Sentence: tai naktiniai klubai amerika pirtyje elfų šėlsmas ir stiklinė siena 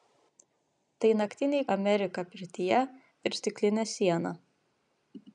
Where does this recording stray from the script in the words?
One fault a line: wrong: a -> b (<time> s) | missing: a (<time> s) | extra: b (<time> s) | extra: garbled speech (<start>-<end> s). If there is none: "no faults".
missing: klubai (1.7 s)
missing: elfų šėlsmas (2.8 s)